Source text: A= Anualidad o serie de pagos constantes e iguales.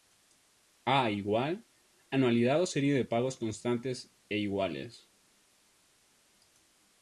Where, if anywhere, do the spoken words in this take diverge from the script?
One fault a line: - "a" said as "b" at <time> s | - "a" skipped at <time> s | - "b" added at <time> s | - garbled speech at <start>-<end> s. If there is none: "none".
none